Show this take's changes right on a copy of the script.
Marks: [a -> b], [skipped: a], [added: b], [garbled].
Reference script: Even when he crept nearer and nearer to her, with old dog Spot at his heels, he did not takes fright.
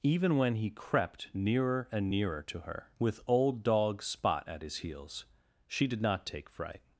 Even when he crept nearer and nearer to her, with old dog Spot at his heels, [he -> she] did not [takes -> take] fright.